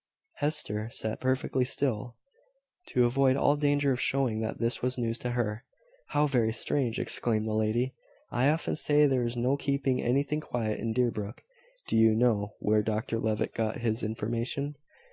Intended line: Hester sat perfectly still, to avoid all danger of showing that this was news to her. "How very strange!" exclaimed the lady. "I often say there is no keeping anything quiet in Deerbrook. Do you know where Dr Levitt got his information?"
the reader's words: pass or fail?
pass